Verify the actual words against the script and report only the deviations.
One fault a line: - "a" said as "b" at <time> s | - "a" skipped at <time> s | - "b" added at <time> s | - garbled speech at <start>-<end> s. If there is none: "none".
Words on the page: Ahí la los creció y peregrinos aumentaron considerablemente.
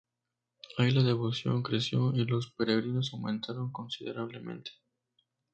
- "los" said as "devoción" at 1.0 s
- "los" added at 2.2 s